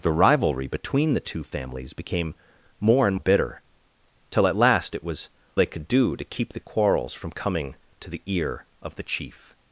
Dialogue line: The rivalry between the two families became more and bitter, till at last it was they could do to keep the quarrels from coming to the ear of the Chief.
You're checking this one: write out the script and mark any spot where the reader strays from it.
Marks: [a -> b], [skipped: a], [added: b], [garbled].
The rivalry between the two families became more and bitter, till at last it was they could do to keep the quarrels from coming to the ear of the Chief.